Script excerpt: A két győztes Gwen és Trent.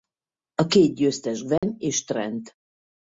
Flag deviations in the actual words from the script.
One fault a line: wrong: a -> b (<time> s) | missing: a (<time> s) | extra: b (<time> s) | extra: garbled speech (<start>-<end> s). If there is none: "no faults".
no faults